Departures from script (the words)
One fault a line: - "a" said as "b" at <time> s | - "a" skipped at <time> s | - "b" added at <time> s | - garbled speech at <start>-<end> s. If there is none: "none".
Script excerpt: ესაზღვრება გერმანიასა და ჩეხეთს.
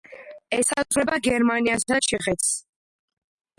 none